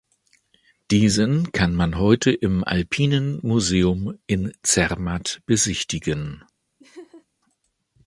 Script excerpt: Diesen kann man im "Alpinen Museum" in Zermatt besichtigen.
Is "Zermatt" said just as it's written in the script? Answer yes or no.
yes